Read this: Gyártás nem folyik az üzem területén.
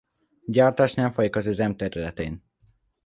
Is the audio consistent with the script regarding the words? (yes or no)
yes